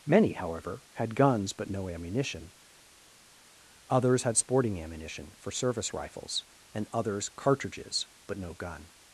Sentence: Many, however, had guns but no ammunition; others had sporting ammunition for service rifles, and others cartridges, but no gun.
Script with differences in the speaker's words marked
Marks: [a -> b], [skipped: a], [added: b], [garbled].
Many, however, had guns but no ammunition; others had sporting ammunition for service rifles, and others cartridges, but no gun.